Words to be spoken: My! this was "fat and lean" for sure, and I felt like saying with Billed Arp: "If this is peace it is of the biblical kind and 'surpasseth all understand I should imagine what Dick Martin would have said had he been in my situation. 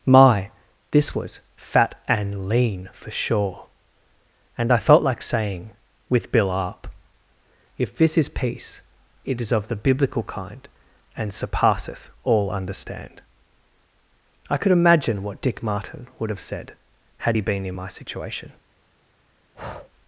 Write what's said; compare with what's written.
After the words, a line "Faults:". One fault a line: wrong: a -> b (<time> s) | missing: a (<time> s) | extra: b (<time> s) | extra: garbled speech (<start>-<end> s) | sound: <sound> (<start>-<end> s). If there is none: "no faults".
My! this was "fat and lean" for sure, and I felt like saying with Bill Arp: "If this is peace it is of the biblical kind and 'surpasseth all understand I could imagine what Dick Martin would have said had he been in my situation.
Faults:
wrong: Billed -> Bill (6.3 s)
wrong: should -> could (14.6 s)
sound: breath (19.5-19.9 s)